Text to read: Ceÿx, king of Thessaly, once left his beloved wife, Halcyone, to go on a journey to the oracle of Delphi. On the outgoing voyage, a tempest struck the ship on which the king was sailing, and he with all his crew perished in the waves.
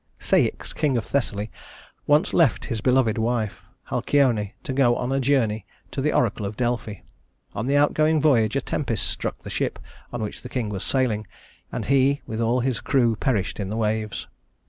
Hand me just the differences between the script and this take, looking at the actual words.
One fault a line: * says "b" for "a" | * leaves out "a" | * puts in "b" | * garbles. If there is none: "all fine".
all fine